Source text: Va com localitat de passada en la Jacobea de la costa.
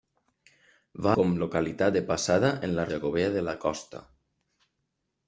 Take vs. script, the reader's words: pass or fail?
pass